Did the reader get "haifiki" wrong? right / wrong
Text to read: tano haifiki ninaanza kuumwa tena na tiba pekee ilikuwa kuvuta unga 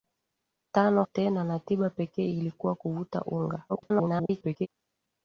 wrong